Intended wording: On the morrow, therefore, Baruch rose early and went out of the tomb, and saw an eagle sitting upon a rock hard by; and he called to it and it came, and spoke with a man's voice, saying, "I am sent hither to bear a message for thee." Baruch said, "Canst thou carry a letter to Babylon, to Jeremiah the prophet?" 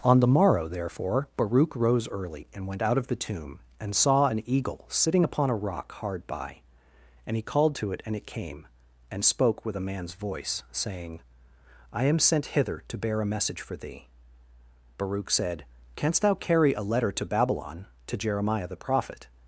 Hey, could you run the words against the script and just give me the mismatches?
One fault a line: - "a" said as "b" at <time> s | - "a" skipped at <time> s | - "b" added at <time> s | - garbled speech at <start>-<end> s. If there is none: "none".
none